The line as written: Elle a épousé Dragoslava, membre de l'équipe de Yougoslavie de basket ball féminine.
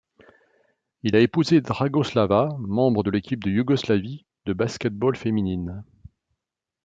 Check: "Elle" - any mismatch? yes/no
yes